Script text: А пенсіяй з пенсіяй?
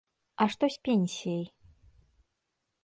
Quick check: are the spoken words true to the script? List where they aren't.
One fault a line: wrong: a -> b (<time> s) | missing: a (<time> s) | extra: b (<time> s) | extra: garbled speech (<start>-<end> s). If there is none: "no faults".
wrong: пенсіяй -> што (0.5 s)